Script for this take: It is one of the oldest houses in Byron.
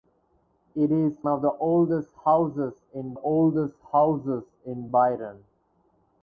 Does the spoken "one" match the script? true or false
false